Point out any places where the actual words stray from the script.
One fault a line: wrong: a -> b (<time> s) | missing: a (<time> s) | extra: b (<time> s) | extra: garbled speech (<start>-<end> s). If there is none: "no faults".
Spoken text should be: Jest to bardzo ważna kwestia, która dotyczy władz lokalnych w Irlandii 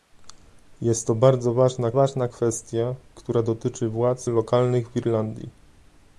extra: ważna (1.9 s)